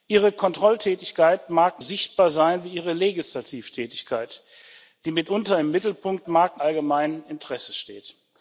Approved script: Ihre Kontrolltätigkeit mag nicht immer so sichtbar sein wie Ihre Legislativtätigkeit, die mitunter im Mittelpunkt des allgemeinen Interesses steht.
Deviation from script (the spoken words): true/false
true